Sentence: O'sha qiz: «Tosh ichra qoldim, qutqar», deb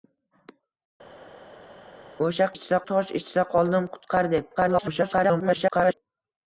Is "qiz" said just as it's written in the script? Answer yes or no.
no